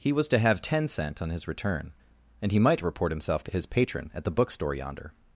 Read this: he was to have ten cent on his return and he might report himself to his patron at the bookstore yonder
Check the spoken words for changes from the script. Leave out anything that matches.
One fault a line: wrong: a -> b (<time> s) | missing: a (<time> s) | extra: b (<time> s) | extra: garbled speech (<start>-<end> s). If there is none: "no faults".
no faults